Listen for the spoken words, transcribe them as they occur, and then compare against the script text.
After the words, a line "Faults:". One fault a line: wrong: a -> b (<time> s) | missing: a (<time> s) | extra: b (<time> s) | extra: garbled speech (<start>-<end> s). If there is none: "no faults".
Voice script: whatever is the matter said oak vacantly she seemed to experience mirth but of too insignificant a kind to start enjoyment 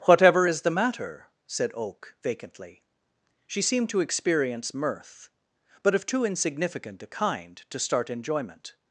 whatever is the matter said oak vacantly she seemed to experience mirth but of too insignificant a kind to start enjoyment
Faults:
no faults